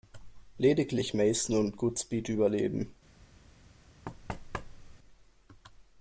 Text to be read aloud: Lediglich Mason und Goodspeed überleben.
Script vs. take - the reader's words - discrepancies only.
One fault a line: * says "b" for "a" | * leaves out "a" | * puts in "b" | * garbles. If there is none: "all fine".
all fine